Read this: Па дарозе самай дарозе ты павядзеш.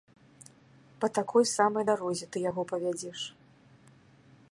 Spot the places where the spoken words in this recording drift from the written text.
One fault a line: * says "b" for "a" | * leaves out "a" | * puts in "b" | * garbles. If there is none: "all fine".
* says "такой" for "дарозе"
* puts in "яго"